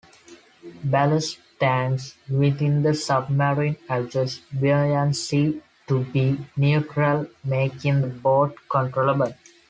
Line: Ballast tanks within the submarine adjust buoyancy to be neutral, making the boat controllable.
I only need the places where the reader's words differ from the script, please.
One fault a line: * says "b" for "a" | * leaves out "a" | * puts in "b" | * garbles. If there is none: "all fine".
all fine